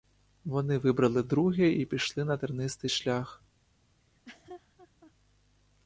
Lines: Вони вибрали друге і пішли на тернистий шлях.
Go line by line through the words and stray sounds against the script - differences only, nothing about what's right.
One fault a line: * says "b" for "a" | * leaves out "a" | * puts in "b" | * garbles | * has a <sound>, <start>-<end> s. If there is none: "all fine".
* has a laugh, 4.0-5.1 s